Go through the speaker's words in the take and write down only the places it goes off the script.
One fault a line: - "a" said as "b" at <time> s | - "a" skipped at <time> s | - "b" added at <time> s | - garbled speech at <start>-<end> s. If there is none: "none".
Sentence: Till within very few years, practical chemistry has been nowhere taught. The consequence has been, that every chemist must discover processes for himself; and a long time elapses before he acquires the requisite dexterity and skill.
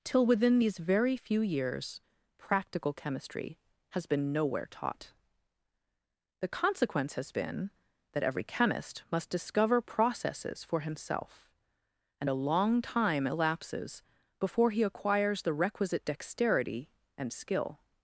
- "these" added at 0.6 s